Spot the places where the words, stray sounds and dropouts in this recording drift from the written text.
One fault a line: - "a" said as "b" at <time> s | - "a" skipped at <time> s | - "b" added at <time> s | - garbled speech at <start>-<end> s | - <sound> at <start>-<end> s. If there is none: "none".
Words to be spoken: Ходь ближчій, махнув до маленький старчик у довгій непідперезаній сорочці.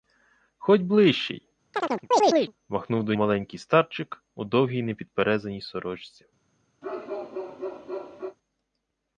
- chirp at 1.7-2.5 s
- bark at 6.8-8.4 s